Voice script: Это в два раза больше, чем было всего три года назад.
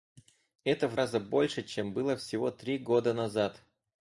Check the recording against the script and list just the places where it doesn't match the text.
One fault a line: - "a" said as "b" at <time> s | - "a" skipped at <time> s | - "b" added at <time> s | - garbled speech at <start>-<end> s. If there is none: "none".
- "два" skipped at 1.0 s